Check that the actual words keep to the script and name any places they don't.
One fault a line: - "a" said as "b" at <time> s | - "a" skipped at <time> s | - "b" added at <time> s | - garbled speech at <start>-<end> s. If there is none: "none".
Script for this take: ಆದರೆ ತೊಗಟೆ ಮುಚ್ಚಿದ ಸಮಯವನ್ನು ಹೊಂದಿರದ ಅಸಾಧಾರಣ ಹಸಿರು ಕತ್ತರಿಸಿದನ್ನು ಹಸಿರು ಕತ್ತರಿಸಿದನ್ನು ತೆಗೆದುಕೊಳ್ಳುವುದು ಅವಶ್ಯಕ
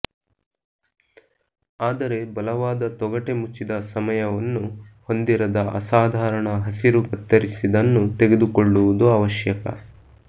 - "ಬಲವಾದ" added at 2.3 s
- "ಹಸಿರು ಕತ್ತರಿಸಿದನ್ನು" skipped at 8.0 s